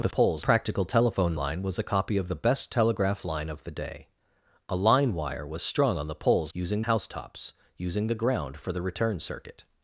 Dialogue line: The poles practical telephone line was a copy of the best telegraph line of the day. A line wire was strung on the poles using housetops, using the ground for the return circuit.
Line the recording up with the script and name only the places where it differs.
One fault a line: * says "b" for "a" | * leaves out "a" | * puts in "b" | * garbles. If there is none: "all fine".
all fine